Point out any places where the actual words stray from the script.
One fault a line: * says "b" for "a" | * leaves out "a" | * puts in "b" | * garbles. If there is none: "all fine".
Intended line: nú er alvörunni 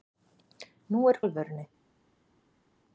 all fine